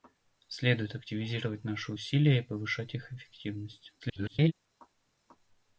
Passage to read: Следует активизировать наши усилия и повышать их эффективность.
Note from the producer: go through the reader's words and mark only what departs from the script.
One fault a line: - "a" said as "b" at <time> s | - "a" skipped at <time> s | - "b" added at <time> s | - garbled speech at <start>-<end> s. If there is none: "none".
- garbled speech at 4.0-4.5 s